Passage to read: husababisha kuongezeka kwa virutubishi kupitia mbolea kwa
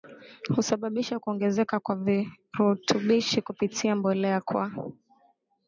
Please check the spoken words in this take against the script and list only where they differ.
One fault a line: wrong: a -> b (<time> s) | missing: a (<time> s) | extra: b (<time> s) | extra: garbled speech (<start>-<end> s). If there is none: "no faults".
no faults